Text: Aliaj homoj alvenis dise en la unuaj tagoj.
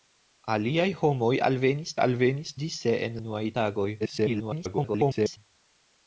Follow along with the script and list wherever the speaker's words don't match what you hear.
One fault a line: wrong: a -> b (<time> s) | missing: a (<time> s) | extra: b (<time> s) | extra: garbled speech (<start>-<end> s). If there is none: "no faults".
extra: alvenis (2.1 s)
missing: la (3.2 s)
extra: garbled speech (4.0-5.4 s)